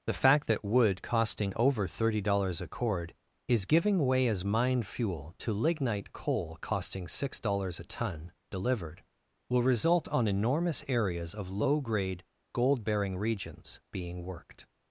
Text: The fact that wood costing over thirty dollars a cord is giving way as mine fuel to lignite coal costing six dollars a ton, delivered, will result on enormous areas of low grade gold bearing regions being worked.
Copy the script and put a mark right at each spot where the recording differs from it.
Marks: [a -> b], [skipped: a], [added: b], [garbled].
The fact that wood costing over thirty dollars a cord is giving way as mine fuel to lignite coal costing six dollars a ton, delivered, will result on enormous areas of low grade gold bearing regions being worked.